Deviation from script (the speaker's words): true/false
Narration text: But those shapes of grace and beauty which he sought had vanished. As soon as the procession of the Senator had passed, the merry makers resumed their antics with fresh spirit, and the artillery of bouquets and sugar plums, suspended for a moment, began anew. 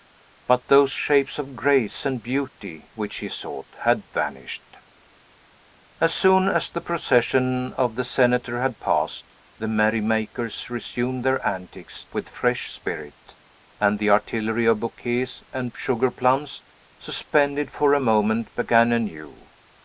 false